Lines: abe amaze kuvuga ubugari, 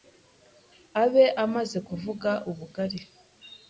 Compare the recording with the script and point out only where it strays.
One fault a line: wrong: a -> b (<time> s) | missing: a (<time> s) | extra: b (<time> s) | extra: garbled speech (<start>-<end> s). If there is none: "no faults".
no faults